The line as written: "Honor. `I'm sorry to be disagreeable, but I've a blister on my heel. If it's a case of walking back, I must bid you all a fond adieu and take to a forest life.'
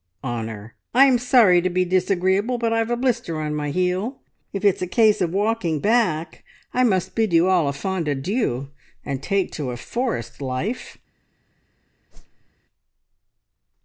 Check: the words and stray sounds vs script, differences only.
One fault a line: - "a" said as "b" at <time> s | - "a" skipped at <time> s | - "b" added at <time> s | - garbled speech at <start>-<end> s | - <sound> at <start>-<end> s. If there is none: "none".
- whoosh at 12.1-12.5 s